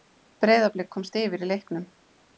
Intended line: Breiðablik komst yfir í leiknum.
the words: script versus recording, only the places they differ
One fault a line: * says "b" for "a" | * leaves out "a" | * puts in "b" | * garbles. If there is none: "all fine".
all fine